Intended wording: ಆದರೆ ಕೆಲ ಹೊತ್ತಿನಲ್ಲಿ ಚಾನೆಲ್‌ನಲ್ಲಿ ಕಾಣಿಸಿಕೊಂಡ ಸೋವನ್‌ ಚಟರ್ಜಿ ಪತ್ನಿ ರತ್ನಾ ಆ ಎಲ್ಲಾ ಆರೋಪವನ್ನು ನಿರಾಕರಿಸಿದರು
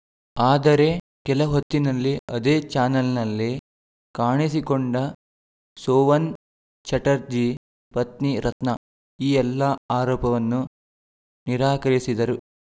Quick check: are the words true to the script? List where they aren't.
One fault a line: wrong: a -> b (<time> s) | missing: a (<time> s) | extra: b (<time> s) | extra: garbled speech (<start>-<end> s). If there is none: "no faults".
extra: ಅದೇ (2.3 s)
wrong: ಆ -> ಈ (9.2 s)